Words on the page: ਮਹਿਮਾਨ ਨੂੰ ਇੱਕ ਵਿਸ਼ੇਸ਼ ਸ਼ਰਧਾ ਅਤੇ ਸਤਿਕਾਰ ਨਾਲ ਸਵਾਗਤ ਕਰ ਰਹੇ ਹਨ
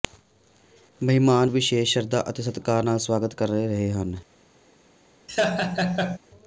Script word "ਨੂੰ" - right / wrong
wrong